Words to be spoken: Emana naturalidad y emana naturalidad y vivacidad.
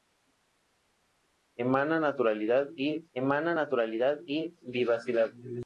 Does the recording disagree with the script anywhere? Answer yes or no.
no